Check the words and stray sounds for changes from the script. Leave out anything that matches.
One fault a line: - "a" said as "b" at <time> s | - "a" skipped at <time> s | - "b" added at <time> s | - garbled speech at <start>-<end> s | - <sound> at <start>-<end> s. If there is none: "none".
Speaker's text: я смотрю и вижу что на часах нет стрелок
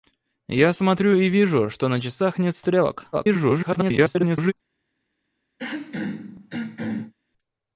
- garbled speech at 3.1-4.5 s
- throat clearing at 5.6-7.1 s